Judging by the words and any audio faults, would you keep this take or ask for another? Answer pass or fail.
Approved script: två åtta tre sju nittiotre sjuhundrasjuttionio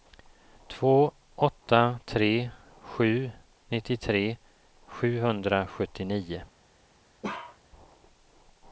fail